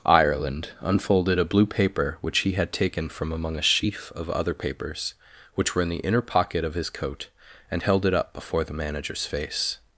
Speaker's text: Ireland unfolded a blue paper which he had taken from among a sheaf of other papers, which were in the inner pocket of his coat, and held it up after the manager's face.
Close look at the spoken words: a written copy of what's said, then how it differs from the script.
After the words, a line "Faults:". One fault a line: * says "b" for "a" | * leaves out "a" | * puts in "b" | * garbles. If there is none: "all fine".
Ireland unfolded a blue paper which he had taken from among a sheaf of other papers, which were in the inner pocket of his coat, and held it up before the manager's face.
Faults:
* says "before" for "after"